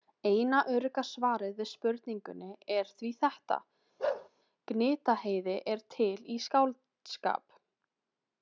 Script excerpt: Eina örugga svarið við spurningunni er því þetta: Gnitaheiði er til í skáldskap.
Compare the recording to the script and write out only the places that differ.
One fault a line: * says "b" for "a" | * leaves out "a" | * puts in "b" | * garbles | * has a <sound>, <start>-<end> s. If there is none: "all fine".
* has a bark, 4.0-4.3 s